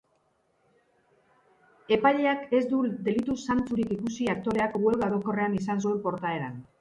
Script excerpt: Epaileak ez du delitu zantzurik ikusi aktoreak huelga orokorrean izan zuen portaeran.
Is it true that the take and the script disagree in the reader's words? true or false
false